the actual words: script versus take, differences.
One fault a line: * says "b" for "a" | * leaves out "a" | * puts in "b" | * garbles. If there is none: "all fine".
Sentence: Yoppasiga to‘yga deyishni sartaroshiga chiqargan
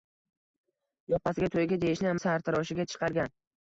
all fine